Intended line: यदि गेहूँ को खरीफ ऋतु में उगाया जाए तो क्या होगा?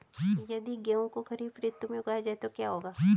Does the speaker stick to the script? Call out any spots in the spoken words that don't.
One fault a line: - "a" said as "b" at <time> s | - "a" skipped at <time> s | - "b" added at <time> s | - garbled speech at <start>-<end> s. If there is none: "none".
none